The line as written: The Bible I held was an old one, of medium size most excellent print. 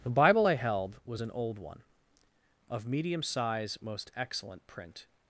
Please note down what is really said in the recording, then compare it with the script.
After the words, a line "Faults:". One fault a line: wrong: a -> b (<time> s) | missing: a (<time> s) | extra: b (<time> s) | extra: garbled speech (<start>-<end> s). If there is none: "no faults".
The Bible I held was an old one, of medium size most excellent print.
Faults:
no faults